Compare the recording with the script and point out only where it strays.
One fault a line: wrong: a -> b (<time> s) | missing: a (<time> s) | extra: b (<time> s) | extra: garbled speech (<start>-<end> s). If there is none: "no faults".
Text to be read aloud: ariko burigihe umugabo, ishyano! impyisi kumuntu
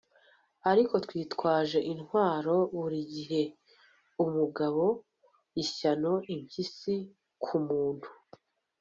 extra: twitwaje intwaro (1.0 s)